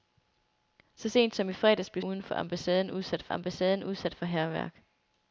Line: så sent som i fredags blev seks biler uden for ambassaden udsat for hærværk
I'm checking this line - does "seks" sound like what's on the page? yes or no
no